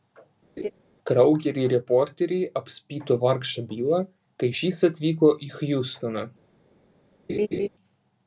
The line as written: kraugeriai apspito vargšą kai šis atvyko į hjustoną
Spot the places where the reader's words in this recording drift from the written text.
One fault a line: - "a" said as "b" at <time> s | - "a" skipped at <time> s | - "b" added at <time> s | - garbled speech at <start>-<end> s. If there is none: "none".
- "reporteriai" added at 1.7 s
- "bilą" added at 3.7 s